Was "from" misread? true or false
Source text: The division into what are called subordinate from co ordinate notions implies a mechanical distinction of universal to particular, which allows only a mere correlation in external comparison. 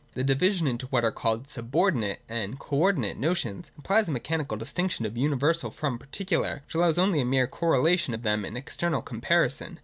true